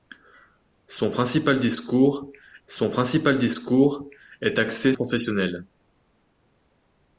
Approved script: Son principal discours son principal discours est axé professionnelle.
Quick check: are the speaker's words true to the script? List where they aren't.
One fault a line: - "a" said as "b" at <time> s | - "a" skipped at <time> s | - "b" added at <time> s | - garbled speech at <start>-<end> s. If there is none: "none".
none